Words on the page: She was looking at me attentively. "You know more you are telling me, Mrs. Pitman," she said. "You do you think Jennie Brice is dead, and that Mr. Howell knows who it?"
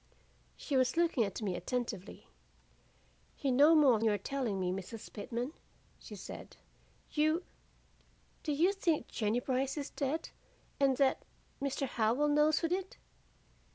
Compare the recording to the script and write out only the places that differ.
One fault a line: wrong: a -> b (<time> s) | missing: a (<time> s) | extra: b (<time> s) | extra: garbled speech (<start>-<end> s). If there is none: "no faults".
no faults